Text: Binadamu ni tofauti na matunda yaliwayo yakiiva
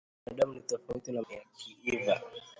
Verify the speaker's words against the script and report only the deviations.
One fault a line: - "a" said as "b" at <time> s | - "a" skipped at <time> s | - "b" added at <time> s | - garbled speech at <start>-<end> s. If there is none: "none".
- "matunda yaliwayo" skipped at 1.2 s